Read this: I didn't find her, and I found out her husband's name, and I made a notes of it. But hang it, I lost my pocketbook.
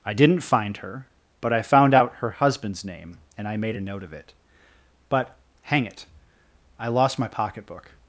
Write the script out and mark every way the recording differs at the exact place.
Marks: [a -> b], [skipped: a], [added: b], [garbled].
I didn't find her, [and -> but] I found out her husband's name, and I made a [notes -> note] of it. But hang it, I lost my pocketbook.